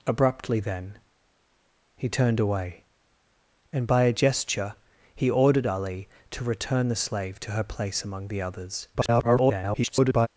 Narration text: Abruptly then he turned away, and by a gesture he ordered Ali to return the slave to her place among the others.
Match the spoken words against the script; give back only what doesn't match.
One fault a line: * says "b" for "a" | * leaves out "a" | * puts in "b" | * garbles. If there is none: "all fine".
* garbles